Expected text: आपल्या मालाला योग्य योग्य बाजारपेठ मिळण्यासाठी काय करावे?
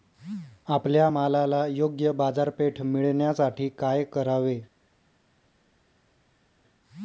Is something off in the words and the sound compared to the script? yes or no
yes